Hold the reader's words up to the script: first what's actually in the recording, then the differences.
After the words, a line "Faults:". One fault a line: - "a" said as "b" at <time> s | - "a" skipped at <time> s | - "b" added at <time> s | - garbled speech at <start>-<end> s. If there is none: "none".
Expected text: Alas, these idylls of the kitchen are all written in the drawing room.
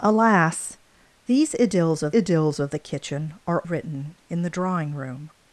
Alas, these idylls of idylls of the kitchen are written in the drawing room.
Faults:
- "idylls of" added at 2.1 s
- "all" skipped at 3.6 s